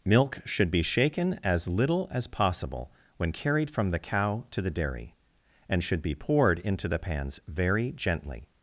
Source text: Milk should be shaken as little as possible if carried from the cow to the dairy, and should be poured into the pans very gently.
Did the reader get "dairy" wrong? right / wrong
right